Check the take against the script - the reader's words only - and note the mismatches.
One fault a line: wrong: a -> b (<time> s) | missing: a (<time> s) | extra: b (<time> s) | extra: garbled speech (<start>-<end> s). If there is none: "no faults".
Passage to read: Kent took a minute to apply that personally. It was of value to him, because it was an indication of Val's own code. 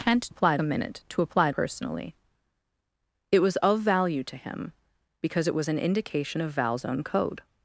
wrong: took -> apply (0.3 s)
missing: that (1.5 s)